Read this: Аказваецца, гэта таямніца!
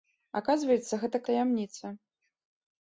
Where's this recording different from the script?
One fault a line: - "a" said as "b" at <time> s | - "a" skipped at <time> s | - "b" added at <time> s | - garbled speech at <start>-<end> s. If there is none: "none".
none